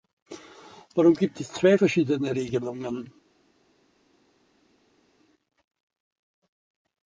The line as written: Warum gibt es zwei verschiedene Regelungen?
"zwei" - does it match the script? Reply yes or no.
yes